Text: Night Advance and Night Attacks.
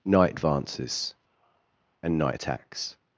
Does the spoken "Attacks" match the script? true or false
true